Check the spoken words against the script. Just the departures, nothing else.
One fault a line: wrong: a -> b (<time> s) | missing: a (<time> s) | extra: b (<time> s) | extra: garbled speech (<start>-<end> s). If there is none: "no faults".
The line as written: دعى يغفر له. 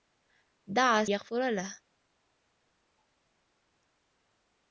no faults